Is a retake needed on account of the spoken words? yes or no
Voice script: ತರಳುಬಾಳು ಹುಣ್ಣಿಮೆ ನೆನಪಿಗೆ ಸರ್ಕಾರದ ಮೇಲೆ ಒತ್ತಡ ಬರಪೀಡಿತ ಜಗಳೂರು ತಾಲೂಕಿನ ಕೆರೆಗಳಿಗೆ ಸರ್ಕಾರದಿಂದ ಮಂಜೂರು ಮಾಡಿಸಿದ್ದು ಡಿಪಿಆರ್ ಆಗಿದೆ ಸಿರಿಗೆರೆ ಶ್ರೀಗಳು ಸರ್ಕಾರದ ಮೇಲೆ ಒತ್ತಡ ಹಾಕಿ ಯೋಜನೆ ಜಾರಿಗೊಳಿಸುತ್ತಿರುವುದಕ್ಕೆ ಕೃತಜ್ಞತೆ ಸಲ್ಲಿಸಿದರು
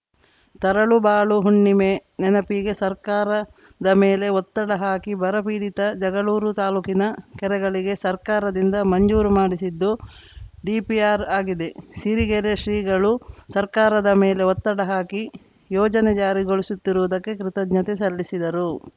yes